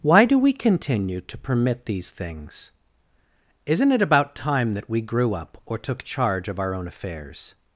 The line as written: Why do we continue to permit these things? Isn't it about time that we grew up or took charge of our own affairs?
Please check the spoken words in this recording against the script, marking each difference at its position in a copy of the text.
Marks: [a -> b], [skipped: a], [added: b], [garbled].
Why do we continue to permit these things? Isn't it about time that we grew up or took charge of our own affairs?